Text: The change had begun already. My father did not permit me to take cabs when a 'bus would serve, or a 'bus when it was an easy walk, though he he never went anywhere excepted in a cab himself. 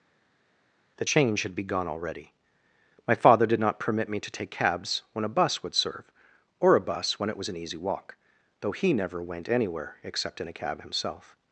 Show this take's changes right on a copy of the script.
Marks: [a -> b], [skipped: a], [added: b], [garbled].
The change had begun already. My father did not permit me to take cabs when a 'bus would serve, or a 'bus when it was an easy walk, though he [skipped: he] never went anywhere [excepted -> except] in a cab himself.